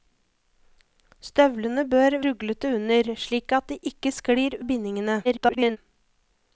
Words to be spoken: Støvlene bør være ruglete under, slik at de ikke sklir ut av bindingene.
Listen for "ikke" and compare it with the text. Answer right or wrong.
right